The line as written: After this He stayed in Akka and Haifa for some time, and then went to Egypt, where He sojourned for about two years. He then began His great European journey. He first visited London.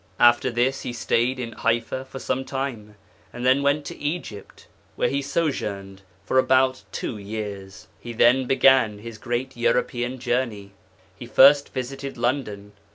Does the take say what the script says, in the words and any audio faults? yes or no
no